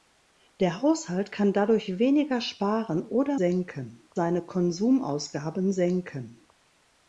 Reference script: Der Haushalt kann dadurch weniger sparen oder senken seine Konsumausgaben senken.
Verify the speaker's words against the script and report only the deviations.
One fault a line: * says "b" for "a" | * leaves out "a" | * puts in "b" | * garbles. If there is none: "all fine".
all fine